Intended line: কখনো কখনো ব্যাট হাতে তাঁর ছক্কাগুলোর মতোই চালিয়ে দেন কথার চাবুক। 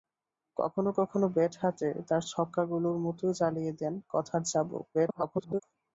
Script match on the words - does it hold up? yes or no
no